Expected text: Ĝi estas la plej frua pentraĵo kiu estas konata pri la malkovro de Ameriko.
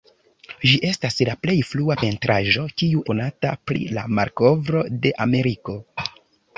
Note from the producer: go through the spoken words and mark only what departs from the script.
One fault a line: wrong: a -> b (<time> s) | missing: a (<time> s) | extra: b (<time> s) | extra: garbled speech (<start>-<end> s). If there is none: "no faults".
missing: estas (3.0 s)